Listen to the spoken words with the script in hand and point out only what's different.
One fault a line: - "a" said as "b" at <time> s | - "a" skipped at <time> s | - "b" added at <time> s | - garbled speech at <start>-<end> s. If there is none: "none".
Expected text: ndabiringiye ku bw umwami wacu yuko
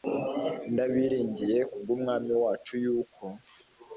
none